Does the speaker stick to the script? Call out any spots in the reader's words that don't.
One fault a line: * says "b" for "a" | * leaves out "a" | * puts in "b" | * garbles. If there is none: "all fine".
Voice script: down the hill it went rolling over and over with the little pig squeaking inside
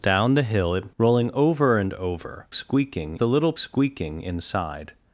* leaves out "went"
* says "squeaking" for "with"
* leaves out "pig"